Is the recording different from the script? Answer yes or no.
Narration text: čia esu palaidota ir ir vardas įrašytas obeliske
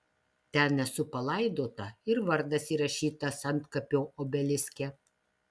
yes